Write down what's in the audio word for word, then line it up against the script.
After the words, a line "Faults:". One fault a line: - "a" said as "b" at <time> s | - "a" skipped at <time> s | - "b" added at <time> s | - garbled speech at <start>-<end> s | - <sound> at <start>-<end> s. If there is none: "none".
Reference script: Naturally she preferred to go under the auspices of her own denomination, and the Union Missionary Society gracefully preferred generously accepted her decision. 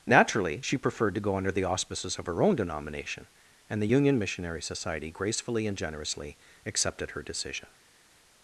Naturally she preferred to go under the auspices of her own denomination, and the Union Missionary Society gracefully and generously accepted her decision.
Faults:
- "preferred" said as "and" at 5.7 s